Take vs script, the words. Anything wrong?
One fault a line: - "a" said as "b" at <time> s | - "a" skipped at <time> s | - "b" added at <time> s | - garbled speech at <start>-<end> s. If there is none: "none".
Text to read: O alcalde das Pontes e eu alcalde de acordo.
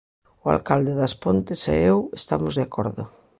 - "alcalde" said as "estamos" at 2.2 s